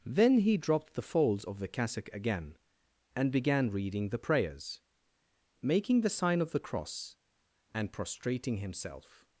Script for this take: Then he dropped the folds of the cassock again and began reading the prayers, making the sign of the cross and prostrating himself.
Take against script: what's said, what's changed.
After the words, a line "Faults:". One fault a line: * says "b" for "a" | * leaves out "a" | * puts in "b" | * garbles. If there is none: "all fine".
Then he dropped the folds of the cassock again and began reading the prayers, making the sign of the cross and prostrating himself.
Faults:
all fine